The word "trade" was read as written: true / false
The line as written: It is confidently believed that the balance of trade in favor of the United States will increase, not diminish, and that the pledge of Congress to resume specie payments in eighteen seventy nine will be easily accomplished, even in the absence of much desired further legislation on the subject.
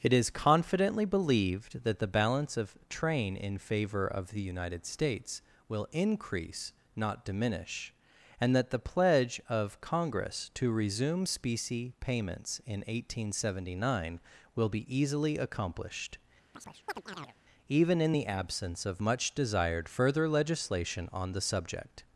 false